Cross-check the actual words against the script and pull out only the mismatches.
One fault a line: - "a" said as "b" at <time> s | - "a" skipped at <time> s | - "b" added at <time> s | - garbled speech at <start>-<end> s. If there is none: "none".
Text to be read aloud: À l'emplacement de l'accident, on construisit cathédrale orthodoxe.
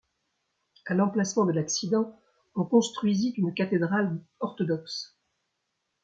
- "une" added at 3.4 s